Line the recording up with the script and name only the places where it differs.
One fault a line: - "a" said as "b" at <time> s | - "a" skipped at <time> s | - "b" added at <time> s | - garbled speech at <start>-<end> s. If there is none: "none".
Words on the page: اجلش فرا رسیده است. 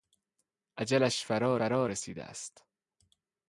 - "فرا" added at 1.5 s